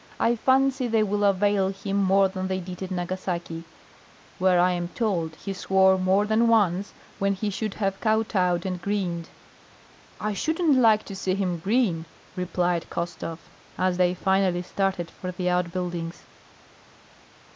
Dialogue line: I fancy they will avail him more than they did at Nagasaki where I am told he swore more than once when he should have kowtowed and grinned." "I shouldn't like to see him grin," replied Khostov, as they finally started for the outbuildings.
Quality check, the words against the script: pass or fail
pass